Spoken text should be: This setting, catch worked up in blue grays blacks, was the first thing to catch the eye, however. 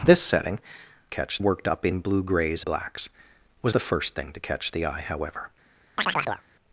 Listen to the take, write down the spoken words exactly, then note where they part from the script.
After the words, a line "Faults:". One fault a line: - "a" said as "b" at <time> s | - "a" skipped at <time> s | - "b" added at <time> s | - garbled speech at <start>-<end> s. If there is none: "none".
This setting, catch worked up in blue grays blacks, was the first thing to catch the eye, however.
Faults:
none